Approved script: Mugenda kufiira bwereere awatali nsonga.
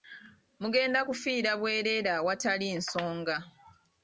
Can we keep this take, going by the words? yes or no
yes